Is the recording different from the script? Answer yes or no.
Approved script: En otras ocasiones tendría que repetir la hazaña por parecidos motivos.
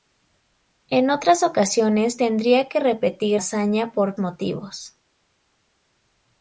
yes